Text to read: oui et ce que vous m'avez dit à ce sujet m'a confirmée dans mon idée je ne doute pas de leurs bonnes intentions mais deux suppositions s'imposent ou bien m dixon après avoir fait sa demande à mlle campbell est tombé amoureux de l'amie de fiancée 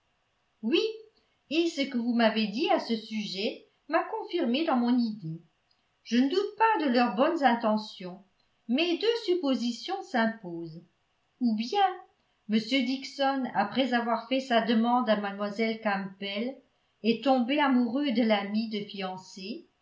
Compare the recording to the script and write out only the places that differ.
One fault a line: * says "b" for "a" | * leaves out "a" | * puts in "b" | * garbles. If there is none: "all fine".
all fine